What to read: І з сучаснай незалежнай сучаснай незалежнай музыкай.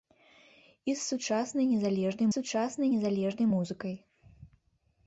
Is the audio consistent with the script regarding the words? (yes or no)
yes